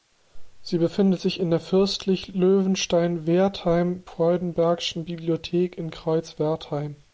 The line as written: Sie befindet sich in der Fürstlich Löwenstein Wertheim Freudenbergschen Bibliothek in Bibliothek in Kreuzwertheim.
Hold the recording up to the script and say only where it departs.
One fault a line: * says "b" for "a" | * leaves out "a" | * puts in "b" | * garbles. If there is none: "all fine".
* leaves out "Bibliothek in"